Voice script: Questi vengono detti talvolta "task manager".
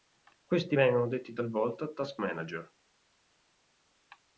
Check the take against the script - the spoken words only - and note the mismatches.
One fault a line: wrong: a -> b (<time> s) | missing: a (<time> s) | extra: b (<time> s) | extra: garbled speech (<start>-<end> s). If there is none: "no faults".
no faults